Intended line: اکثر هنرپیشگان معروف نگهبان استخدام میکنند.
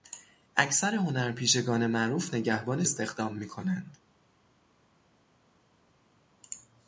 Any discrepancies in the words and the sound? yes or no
no